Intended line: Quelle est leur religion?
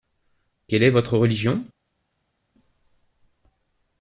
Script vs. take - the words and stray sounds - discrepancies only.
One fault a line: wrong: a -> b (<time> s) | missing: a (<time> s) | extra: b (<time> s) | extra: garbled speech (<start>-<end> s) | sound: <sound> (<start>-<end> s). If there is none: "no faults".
wrong: leur -> votre (0.9 s)